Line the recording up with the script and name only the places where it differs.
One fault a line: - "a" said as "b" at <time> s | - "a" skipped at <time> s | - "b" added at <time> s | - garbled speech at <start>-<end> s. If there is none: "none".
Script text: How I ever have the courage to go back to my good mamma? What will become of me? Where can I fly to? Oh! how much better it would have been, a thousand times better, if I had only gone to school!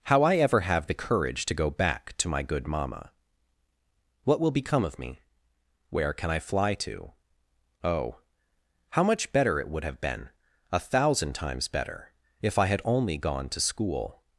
none